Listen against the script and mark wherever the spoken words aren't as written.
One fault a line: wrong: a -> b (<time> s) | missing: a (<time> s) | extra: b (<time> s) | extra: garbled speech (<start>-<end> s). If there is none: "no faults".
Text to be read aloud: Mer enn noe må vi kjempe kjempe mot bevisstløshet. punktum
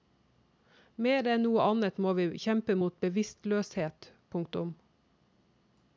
extra: annet (1.6 s)
missing: kjempe (2.8 s)